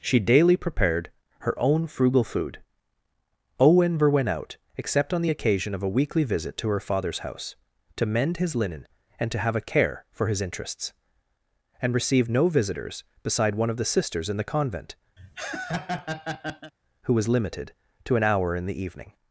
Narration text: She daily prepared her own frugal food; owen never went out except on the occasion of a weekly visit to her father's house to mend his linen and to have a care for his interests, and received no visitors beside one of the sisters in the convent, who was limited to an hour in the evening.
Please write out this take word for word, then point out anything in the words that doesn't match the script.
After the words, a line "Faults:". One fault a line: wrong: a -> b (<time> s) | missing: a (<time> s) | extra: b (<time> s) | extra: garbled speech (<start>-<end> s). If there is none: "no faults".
She daily prepared her own frugal food; owen never went out except on the occasion of a weekly visit to her father's house to mend his linen and to have a care for his interests, and received no visitors beside one of the sisters in the convent, who was limited to an hour in the evening.
Faults:
no faults